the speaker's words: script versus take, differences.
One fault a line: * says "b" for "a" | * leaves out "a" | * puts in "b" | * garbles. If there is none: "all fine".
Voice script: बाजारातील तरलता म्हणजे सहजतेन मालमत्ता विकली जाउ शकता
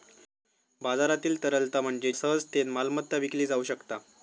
all fine